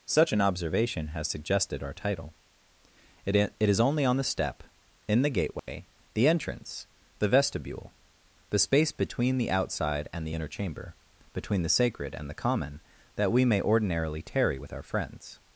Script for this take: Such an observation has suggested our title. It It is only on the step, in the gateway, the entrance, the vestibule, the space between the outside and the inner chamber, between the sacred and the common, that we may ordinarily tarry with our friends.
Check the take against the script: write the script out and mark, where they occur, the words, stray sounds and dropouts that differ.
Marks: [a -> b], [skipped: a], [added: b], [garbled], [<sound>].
Such an observation has suggested our title. It It is only on the step, in the gateway, [dropout] the entrance, the vestibule, the space between the outside and the inner chamber, between the sacred and the common, that we may ordinarily tarry with our friends.